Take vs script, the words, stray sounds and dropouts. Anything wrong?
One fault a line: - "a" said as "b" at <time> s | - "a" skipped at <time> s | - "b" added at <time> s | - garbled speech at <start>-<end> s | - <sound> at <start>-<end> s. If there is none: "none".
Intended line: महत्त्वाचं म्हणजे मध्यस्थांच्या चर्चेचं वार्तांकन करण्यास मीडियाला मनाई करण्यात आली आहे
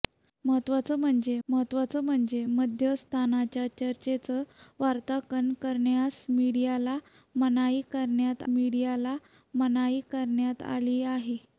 - "महत्त्वाचं म्हणजे" added at 1.5 s
- "मीडियाला मनाई करण्यात" added at 8.5 s